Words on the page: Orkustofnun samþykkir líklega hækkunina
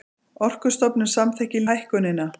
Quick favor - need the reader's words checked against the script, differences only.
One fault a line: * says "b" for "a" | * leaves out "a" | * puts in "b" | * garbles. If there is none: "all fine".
* leaves out "líklega"